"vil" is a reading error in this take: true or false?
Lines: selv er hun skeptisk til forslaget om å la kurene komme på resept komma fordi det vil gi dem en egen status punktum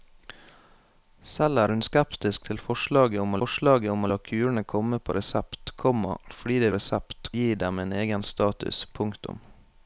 true